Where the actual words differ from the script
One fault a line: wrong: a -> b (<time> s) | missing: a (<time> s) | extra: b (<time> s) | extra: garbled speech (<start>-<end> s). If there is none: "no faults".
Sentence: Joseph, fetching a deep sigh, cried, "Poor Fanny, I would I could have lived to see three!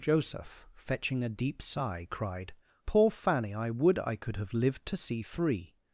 no faults